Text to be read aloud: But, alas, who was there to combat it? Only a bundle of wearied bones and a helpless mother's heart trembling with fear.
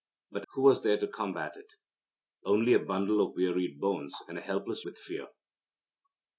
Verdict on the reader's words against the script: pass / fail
fail